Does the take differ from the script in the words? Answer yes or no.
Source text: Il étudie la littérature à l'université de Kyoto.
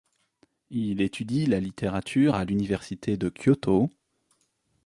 no